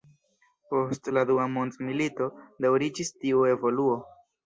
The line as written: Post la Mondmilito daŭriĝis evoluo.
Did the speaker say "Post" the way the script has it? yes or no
yes